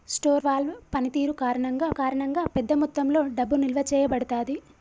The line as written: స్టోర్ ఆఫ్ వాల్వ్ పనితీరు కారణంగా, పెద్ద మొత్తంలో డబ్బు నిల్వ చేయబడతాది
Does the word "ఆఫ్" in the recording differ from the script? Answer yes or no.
yes